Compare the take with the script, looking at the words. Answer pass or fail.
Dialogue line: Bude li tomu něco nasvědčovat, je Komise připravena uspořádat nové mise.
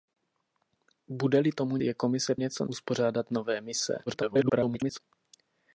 fail